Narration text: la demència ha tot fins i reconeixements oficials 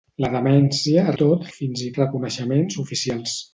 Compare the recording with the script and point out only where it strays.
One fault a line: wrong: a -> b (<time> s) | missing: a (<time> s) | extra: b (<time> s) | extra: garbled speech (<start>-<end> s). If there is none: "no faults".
no faults